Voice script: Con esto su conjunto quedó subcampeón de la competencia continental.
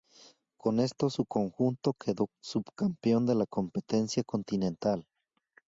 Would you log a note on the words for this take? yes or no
no